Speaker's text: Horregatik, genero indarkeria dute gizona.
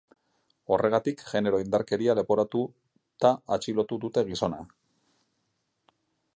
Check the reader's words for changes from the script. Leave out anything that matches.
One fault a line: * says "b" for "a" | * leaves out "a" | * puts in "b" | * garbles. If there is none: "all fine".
* puts in "leporatuta atxilotu"